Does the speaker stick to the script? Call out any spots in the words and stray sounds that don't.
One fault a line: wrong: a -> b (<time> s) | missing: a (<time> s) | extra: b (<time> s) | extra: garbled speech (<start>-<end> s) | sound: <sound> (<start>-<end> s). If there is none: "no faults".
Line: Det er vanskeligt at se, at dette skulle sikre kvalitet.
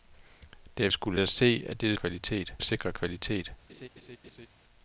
wrong: vanskeligt -> skulle (0.9 s)
wrong: skulle -> kvalitet (1.9 s)
sound: laugh (3.7-4.5 s)